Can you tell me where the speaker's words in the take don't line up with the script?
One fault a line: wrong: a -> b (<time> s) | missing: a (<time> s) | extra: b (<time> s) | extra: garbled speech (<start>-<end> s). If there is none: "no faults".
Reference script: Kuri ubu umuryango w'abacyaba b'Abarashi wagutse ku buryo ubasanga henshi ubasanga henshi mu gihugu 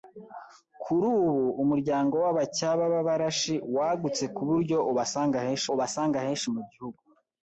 no faults